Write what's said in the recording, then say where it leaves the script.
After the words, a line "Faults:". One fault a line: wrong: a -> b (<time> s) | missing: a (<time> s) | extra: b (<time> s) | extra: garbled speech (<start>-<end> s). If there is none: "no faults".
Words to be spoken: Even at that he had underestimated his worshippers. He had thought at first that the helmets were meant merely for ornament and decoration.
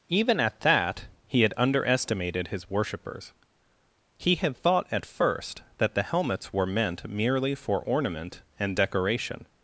Even at that he had underestimated his worshippers. He had thought at first that the helmets were meant merely for ornament and decoration.
Faults:
no faults